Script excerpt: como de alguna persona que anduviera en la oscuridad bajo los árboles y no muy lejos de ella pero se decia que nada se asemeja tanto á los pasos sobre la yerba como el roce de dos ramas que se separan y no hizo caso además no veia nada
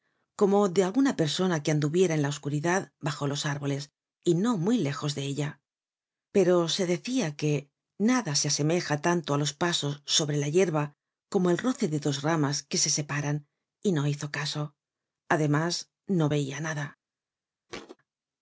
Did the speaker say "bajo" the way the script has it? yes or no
yes